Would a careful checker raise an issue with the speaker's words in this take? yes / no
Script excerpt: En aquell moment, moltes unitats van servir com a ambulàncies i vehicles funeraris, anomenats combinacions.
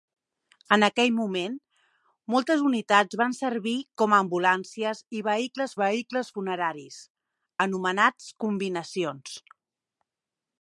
yes